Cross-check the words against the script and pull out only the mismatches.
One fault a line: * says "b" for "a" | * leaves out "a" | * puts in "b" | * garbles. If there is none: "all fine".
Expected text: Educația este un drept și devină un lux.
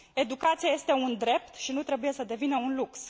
* puts in "nu trebuie să"